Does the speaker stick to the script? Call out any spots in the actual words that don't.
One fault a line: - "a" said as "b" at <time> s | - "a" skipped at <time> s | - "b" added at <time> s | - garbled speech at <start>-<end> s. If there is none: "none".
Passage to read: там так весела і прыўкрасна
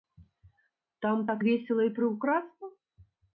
none